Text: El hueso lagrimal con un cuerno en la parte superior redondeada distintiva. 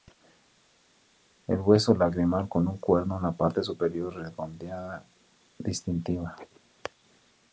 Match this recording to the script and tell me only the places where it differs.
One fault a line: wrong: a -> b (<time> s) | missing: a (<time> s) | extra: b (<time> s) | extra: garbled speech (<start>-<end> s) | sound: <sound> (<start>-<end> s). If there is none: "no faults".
no faults